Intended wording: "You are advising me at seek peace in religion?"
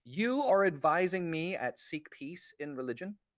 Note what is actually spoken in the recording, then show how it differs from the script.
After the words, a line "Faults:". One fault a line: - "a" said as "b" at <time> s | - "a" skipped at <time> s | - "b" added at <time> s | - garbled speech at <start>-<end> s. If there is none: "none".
"You are advising me at seek peace in religion?"
Faults:
none